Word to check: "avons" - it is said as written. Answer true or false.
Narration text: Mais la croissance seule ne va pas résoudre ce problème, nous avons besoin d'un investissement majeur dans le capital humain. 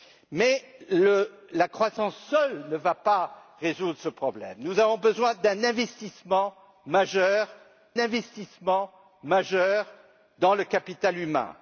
true